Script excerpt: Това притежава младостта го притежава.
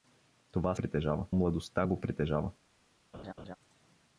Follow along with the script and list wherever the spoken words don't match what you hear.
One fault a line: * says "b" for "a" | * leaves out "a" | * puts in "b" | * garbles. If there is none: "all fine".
all fine